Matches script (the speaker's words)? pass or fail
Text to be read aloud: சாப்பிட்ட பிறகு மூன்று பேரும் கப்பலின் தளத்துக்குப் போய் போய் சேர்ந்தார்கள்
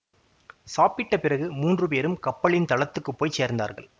fail